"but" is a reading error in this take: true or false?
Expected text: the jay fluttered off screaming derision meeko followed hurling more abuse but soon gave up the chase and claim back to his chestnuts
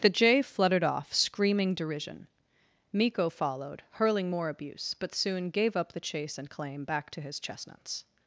false